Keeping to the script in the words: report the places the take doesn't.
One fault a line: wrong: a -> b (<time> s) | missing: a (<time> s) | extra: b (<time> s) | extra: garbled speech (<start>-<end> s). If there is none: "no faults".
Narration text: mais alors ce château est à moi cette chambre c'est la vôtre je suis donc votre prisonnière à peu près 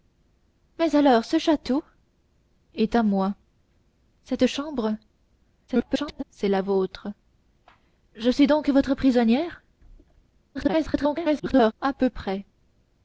extra: garbled speech (5.7-6.2 s)
extra: garbled speech (10.5-11.7 s)